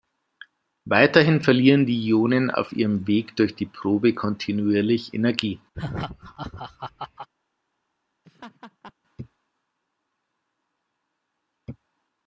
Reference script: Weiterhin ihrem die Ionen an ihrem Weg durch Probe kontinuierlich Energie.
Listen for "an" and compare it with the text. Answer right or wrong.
wrong